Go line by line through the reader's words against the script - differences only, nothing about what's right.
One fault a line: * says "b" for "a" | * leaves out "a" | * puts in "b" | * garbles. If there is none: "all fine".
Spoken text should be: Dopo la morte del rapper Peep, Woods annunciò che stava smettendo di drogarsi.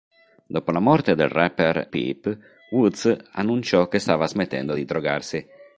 all fine